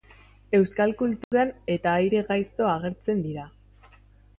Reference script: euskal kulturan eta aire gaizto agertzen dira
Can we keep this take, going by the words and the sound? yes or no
no